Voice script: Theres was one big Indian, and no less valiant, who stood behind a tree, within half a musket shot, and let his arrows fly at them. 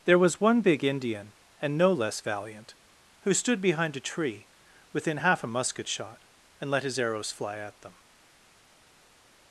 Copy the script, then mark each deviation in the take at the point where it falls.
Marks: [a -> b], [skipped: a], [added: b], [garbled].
[Theres -> There] was one big Indian, and no less valiant, who stood behind a tree, within half a musket shot, and let his arrows fly at them.